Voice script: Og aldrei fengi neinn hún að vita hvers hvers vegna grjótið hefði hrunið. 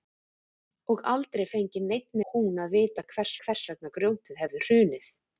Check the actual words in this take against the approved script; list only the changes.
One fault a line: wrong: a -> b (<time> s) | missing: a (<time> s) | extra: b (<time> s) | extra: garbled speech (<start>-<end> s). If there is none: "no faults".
no faults